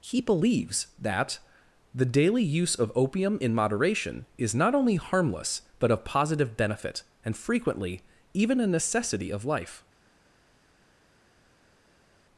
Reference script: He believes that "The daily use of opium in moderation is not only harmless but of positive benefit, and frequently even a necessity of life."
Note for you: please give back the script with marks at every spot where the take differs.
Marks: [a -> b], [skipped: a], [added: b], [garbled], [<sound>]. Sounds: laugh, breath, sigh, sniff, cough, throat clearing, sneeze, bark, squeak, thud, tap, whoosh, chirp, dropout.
He believes that "The daily use of opium in moderation is not only harmless but of positive benefit, and frequently even a necessity of life."